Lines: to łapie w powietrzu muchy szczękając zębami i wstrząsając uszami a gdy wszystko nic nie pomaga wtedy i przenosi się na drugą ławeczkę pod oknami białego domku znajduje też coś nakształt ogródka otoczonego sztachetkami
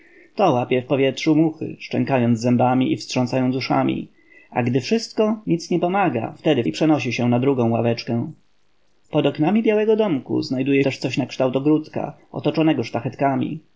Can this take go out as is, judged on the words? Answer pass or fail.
pass